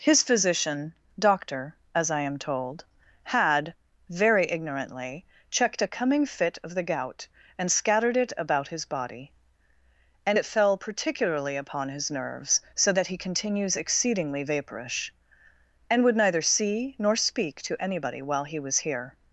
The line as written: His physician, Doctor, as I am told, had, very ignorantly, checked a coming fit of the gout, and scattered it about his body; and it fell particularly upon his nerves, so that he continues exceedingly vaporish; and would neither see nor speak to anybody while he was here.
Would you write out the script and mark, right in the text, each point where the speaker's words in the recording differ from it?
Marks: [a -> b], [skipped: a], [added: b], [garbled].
His physician, Doctor, as I am told, had, very ignorantly, checked a coming fit of the gout, and scattered it about his body; and it fell particularly upon his nerves, so that he continues exceedingly vaporish; and would neither see nor speak to anybody while he was here.